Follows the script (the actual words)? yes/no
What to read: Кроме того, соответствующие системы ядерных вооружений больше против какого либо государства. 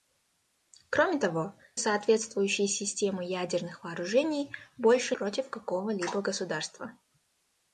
yes